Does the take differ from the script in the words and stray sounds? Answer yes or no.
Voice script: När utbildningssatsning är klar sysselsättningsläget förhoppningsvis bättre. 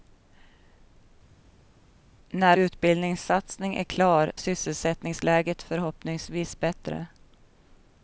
no